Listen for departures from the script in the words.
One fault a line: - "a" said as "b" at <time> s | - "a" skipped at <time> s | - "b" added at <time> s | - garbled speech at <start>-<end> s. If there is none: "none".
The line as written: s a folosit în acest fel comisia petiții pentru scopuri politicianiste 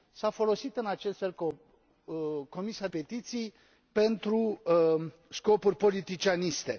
none